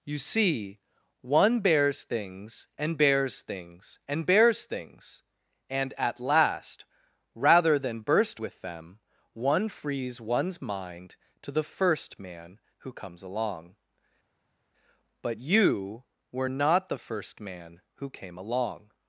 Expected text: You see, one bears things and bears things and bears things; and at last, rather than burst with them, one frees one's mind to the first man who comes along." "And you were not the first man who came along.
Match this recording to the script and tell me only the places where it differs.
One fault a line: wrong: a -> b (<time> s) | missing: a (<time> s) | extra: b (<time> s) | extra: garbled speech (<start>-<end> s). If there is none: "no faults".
wrong: And -> But (15.2 s)